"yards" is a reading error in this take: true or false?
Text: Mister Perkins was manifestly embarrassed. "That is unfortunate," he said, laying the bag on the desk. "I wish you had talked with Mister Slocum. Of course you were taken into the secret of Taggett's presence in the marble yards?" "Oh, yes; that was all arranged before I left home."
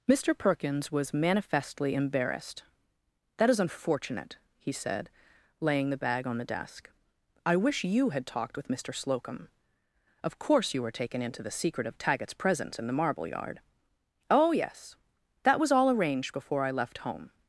true